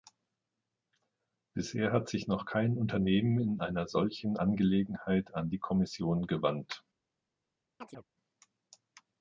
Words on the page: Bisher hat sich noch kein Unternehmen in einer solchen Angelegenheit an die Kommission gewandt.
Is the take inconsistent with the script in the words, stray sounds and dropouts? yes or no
yes